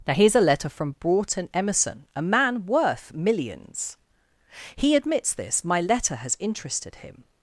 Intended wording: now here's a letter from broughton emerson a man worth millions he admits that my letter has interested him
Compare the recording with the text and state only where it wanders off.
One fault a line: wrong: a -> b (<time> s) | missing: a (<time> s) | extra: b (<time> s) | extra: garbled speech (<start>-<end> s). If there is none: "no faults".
wrong: that -> this (5.3 s)